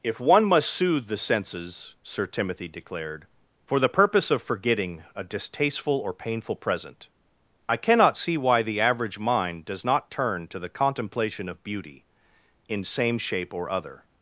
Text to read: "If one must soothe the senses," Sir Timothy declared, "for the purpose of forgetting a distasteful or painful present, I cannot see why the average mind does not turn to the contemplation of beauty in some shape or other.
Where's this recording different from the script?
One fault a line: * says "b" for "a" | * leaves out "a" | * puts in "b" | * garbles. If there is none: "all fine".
* says "same" for "some"